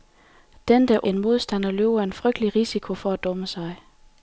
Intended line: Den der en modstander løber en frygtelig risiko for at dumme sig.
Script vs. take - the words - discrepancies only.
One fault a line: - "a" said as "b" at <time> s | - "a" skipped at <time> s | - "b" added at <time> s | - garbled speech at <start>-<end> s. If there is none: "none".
none